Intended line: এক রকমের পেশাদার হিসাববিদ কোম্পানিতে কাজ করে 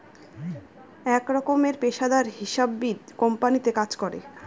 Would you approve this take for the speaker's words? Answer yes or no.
yes